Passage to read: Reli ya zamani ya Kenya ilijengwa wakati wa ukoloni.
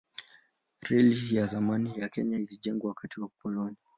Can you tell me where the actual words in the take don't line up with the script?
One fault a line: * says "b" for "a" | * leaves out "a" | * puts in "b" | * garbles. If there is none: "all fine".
all fine